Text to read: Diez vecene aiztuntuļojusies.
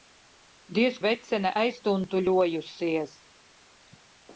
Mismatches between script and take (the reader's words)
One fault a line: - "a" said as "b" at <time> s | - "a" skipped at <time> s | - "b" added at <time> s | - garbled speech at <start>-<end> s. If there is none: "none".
none